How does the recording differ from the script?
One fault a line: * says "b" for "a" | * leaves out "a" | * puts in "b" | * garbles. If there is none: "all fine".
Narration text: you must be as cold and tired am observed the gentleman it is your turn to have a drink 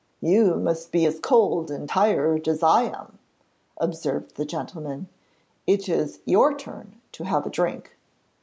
* puts in "as i"